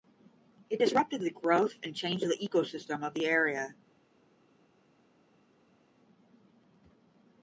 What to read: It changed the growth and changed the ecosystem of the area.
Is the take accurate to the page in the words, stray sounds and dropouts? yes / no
no